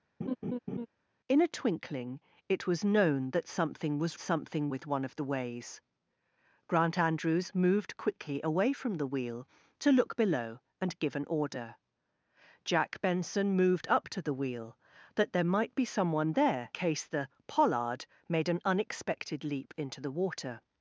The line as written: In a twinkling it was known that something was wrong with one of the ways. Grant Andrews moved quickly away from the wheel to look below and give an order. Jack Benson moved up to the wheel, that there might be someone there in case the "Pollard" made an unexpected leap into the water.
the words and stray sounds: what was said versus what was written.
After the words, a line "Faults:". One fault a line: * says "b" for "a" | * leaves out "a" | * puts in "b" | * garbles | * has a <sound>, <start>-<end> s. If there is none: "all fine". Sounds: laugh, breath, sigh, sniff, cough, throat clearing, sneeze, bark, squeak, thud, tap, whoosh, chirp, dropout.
In a twinkling it was known that something was something with one of the ways. Grant Andrews moved quickly away from the wheel to look below and give an order. Jack Benson moved up to the wheel, that there might be someone there case the "Pollard" made an unexpected leap into the water.
Faults:
* has a laugh, 0.2-0.9 s
* says "something" for "wrong"
* leaves out "in"